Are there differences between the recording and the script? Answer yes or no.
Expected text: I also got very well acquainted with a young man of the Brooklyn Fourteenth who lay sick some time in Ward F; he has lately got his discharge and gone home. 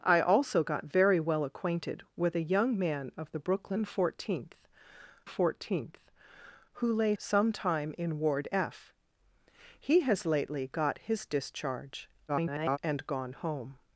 yes